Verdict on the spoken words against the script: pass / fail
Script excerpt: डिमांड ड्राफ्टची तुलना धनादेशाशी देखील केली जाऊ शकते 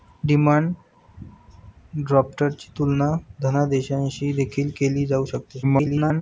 fail